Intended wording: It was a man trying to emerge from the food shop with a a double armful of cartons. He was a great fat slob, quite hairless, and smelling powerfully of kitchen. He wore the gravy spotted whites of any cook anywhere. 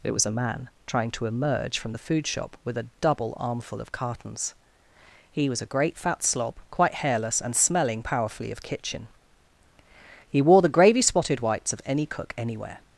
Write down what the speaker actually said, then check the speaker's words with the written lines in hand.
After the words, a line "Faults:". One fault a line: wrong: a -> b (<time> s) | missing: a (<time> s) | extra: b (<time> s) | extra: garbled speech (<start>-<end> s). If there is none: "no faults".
It was a man trying to emerge from the food shop with a double armful of cartons. He was a great fat slob, quite hairless, and smelling powerfully of kitchen. He wore the gravy spotted whites of any cook anywhere.
Faults:
missing: a (2.9 s)